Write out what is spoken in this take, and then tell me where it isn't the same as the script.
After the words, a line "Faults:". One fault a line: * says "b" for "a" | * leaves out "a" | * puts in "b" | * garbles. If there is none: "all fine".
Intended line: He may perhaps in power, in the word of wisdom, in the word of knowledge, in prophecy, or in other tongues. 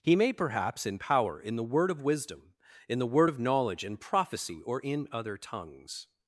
He may perhaps in power, in the word of wisdom, in the word of knowledge, in prophecy, or in other tongues.
Faults:
all fine